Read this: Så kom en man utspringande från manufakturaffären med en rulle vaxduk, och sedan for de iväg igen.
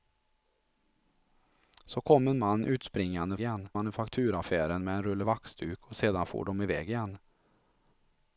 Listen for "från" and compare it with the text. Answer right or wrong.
wrong